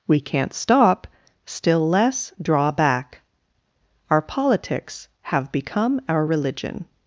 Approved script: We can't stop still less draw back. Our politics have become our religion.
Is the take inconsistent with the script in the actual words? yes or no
no